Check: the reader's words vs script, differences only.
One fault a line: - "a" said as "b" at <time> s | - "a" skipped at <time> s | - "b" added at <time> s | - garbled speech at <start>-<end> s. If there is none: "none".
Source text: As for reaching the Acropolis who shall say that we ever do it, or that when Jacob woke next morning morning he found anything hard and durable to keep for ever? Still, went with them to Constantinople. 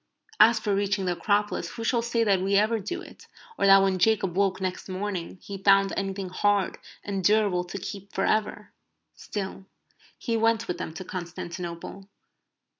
- "morning" skipped at 5.4 s
- "he" added at 10.2 s